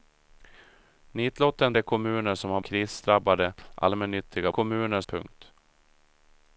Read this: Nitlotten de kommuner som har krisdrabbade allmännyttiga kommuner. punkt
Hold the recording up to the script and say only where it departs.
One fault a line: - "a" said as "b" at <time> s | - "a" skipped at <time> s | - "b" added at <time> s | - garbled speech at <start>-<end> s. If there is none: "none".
none